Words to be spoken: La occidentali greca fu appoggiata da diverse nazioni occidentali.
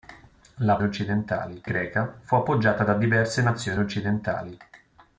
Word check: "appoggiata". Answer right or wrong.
right